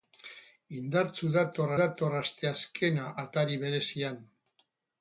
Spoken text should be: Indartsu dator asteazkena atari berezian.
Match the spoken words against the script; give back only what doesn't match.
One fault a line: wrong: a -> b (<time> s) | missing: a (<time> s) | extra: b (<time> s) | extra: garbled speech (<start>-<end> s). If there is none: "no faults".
extra: dator (1.8 s)